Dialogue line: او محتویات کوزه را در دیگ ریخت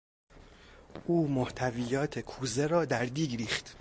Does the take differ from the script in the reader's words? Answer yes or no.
no